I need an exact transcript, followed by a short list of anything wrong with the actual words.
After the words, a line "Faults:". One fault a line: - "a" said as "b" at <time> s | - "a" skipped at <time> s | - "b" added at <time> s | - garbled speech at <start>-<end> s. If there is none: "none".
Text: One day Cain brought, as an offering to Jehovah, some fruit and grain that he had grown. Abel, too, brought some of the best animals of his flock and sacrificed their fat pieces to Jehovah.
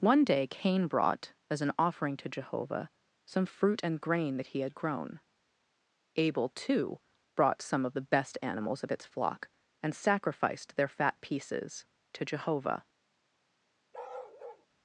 One day Cain brought, as an offering to Jehovah, some fruit and grain that he had grown. Abel, too, brought some of the best animals of its flock and sacrificed their fat pieces to Jehovah.
Faults:
- "his" said as "its" at 8.9 s